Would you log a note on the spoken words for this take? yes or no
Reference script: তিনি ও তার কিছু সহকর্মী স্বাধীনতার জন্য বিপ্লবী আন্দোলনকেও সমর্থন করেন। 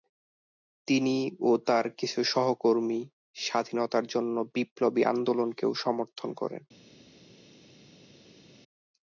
no